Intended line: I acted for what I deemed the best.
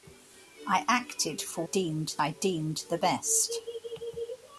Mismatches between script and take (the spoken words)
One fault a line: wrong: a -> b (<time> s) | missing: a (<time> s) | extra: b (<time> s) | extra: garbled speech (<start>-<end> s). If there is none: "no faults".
wrong: what -> deemed (1.6 s)